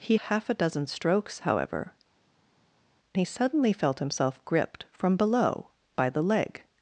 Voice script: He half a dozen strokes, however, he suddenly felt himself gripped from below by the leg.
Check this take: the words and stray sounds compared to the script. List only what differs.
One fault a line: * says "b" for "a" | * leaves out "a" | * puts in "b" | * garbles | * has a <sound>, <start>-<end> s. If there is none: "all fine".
all fine